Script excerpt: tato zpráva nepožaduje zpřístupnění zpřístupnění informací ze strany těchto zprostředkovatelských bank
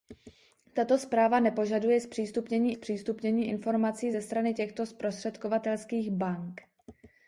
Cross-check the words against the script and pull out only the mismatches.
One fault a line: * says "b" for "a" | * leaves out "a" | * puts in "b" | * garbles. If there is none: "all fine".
all fine